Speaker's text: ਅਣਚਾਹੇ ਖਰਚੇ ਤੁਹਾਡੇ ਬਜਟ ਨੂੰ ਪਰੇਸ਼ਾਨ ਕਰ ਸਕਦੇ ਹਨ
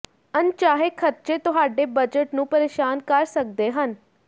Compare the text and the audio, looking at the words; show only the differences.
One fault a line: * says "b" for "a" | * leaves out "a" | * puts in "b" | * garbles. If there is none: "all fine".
all fine